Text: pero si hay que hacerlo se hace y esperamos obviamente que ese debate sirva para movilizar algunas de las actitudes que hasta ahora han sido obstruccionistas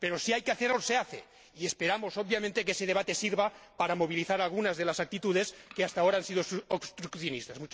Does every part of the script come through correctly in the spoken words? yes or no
yes